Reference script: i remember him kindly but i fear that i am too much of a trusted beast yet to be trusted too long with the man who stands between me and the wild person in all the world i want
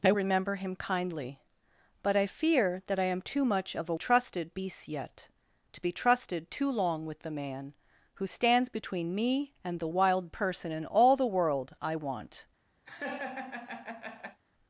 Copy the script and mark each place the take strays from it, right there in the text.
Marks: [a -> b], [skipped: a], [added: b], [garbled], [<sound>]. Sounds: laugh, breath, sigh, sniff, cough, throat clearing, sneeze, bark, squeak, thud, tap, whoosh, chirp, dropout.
i remember him kindly but i fear that i am too much of a trusted beast yet to be trusted too long with the man who stands between me and the wild person in all the world i want [laugh]